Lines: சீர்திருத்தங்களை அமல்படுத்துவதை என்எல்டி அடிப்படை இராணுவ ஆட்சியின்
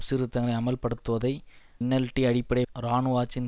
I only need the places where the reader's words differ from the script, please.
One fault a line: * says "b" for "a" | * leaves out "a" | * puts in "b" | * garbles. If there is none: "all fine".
all fine